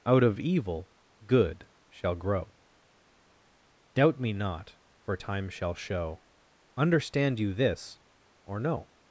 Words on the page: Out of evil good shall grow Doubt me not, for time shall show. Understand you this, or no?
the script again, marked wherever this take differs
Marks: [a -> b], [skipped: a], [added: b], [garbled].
Out of evil good shall grow Doubt me not, for time shall show. Understand you this, or no?